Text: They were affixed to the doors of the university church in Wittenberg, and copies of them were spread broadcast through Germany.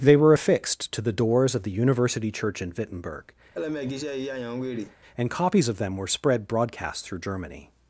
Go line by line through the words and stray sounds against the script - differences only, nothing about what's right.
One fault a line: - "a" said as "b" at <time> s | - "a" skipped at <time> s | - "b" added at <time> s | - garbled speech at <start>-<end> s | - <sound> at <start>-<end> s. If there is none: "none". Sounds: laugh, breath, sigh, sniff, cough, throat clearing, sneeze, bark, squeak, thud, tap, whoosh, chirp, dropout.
- laugh at 3.5-5.0 s